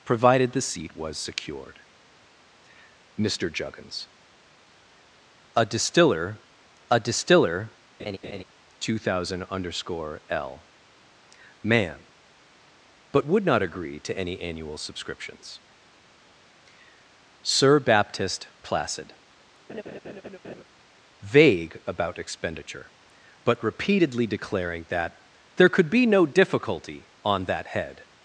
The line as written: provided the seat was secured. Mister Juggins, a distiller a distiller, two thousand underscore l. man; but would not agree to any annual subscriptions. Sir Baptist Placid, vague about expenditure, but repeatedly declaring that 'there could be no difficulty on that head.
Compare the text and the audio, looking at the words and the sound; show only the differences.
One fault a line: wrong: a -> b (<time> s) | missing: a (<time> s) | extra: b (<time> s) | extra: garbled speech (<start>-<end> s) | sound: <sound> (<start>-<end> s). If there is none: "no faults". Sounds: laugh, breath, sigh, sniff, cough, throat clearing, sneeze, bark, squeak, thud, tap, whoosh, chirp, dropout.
sound: laugh (8.0-8.4 s)
sound: laugh (19.7-20.6 s)